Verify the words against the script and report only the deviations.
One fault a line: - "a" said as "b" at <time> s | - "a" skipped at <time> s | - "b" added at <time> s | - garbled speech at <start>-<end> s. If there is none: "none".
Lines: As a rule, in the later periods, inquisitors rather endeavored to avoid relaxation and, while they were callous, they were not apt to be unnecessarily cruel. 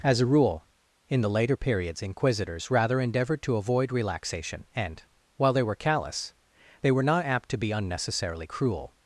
none